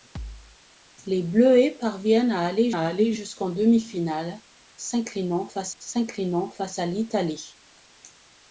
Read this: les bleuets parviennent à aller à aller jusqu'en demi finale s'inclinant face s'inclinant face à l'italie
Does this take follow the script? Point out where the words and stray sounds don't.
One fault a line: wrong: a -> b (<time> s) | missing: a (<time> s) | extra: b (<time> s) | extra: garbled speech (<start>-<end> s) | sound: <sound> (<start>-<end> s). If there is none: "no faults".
sound: thud (0.2-0.6 s)